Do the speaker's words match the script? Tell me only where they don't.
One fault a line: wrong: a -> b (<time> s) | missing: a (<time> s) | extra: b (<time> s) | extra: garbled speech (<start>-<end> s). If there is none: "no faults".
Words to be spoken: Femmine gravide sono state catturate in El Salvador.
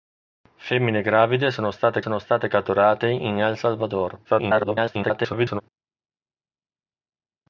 extra: sono state (2.0 s)
extra: garbled speech (4.2-5.6 s)